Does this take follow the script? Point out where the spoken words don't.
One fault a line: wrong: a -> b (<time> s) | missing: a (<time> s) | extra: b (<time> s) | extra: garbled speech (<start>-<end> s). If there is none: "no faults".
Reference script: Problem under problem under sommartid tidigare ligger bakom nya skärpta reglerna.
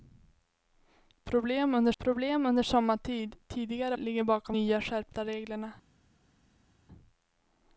no faults